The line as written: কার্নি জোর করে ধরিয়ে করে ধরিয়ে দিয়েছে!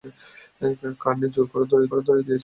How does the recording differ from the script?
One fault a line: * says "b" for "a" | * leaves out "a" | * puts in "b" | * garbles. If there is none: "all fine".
all fine